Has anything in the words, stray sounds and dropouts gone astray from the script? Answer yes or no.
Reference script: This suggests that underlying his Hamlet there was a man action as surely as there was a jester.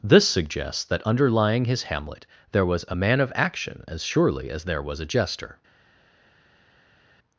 yes